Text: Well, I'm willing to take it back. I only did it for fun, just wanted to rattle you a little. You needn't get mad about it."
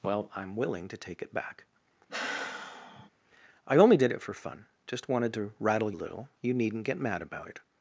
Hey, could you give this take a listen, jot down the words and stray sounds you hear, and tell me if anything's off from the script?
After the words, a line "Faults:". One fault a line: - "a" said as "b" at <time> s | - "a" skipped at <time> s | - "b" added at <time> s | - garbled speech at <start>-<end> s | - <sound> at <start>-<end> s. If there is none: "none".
Well, I'm willing to take it back. I only did it for fun, just wanted to rattle a little. You needn't get mad about it."
Faults:
- sigh at 2.1-3.1 s
- "you" skipped at 5.9 s